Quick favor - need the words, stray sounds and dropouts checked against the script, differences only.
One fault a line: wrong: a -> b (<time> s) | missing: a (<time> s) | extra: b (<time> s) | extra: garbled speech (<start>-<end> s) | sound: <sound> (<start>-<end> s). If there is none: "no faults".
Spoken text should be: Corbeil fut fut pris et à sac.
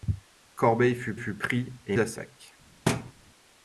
sound: thud (2.9-3.1 s)